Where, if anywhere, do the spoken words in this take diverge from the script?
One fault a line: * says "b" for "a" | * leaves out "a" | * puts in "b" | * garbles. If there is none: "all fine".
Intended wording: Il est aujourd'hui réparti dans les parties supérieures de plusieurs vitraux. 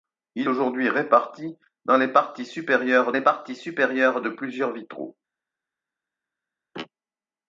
* leaves out "est"
* puts in "les parties supérieures"